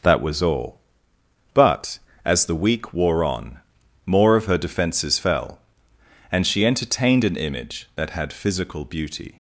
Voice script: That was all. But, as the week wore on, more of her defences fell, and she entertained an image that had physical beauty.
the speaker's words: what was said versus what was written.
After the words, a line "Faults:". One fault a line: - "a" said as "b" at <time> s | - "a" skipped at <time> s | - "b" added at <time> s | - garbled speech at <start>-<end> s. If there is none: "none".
That was all. But, as the week wore on, more of her defences fell, and she entertained an image that had physical beauty.
Faults:
none